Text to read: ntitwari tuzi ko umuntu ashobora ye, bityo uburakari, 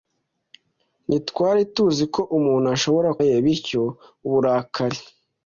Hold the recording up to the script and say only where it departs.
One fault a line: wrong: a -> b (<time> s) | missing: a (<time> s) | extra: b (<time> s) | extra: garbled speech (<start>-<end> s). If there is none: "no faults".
no faults